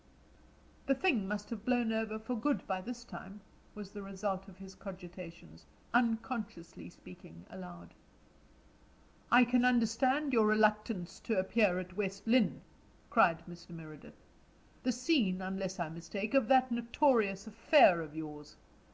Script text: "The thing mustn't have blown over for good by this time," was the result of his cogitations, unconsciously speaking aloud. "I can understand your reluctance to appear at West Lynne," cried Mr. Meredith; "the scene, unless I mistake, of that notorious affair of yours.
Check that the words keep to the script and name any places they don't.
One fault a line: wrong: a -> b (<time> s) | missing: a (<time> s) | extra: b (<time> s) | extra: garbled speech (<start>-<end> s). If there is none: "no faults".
wrong: mustn't -> must (1.3 s)